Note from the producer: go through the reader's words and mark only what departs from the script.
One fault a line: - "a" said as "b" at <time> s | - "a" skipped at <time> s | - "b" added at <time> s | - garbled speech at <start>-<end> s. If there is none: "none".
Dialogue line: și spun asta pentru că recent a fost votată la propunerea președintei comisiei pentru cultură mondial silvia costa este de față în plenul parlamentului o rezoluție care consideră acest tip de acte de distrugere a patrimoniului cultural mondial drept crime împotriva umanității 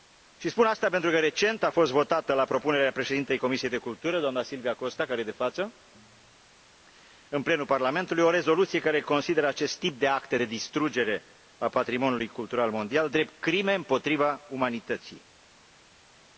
- "mondial" said as "doamna" at 4.2 s
- "care" added at 5.1 s